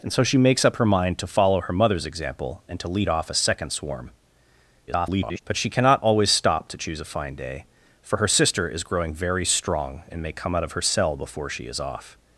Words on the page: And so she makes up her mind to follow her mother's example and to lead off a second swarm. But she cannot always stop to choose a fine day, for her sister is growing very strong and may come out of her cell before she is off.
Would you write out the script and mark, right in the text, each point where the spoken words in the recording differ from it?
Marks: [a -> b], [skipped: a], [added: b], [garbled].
And so she makes up her mind to follow her mother's example and to lead off a second swarm. [garbled] But she cannot always stop to choose a fine day, for her sister is growing very strong and may come out of her cell before she is off.